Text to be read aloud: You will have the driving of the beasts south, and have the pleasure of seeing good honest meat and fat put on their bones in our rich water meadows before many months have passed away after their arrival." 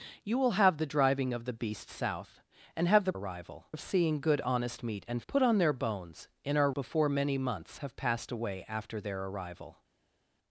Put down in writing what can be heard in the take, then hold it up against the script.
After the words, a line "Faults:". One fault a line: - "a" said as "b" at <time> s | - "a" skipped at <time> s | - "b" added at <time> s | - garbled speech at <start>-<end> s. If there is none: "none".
You will have the driving of the beasts south, and have the arrival of seeing good honest meat and put on their bones in our before many months have passed away after their arrival."
Faults:
- "pleasure" said as "arrival" at 3.1 s
- "fat" skipped at 5.2 s
- "rich water meadows" skipped at 6.7 s